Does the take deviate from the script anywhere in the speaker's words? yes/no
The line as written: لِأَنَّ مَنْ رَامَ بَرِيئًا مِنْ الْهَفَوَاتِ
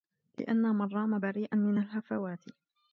no